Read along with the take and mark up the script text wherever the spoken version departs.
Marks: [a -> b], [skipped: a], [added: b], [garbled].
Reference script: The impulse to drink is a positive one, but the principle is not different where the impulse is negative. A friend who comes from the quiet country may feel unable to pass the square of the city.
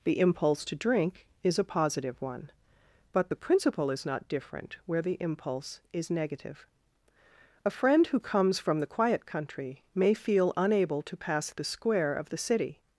The impulse to drink is a positive one, but the principle is not different where the impulse is negative. A friend who comes from the quiet country may feel unable to pass the square of the city.